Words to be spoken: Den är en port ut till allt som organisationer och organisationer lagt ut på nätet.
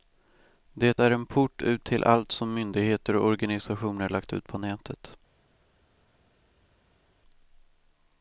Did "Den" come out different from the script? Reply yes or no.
yes